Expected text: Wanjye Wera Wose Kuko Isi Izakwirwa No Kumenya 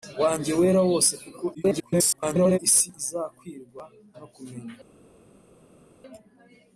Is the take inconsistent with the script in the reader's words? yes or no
yes